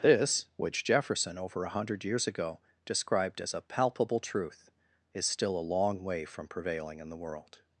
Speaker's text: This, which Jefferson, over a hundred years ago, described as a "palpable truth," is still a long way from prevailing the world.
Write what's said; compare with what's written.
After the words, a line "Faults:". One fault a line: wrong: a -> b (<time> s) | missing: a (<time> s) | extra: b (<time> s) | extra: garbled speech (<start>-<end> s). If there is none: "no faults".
This, which Jefferson, over a hundred years ago, described as a "palpable truth," is still a long way from prevailing in the world.
Faults:
extra: in (7.0 s)